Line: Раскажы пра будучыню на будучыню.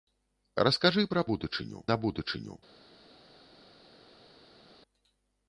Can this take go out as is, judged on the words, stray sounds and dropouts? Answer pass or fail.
pass